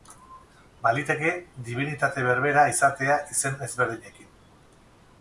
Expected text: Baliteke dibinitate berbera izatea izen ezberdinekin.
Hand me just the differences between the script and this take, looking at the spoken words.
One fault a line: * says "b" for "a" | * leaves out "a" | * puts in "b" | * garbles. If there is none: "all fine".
all fine